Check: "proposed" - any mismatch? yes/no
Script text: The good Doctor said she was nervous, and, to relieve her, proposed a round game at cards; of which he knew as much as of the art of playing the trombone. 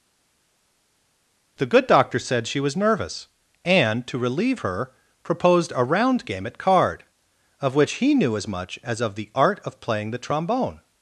no